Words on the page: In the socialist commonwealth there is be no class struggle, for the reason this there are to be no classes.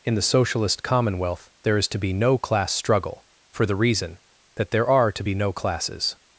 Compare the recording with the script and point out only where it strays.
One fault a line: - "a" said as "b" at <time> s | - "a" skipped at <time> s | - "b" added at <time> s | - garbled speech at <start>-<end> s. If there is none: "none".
- "to" added at 1.9 s
- "this" said as "that" at 4.5 s